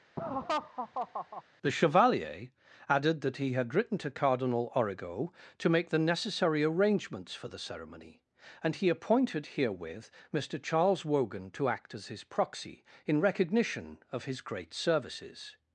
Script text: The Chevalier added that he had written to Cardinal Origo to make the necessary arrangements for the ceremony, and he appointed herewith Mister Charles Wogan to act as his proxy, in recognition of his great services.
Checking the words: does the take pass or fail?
pass